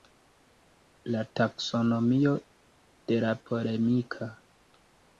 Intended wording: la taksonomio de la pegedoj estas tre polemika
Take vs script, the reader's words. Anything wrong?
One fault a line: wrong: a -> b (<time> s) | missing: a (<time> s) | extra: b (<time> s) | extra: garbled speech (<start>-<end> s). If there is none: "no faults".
missing: pegedoj estas tre (3.3 s)